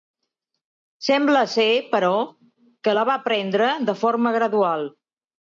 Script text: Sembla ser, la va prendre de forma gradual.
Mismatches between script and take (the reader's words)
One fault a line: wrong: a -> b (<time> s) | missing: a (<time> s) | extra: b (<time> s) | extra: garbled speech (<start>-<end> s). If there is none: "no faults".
extra: però que (1.9 s)